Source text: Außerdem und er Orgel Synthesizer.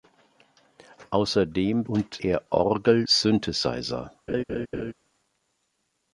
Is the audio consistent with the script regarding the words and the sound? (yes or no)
no